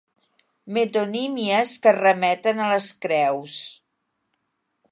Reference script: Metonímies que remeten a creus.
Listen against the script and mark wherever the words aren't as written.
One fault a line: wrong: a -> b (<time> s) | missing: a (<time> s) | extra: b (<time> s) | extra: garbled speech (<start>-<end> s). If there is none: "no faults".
extra: les (2.7 s)